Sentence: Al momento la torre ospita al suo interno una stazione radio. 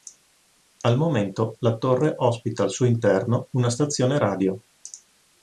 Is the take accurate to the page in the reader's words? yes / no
yes